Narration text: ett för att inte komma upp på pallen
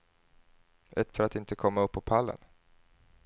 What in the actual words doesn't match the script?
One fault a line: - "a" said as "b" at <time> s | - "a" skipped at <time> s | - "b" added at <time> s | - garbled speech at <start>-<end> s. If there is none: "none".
none